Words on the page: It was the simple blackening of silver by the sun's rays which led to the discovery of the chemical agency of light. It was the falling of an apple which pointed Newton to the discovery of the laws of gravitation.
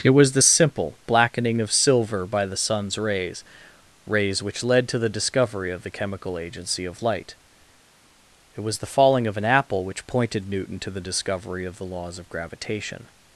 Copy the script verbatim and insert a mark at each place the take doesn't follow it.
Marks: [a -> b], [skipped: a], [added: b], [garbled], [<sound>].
It was the simple blackening of silver by the sun's rays [added: rays] which led to the discovery of the chemical agency of light. It was the falling of an apple which pointed Newton to the discovery of the laws of gravitation.